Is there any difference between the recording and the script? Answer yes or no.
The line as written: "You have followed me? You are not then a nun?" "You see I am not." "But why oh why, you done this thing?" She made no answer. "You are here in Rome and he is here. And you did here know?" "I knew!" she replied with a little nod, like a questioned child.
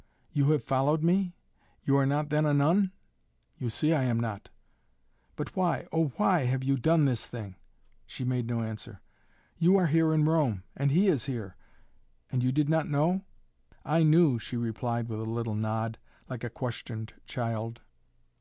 yes